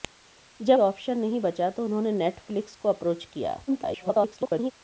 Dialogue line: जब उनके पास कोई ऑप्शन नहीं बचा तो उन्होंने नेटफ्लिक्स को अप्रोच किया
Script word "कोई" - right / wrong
wrong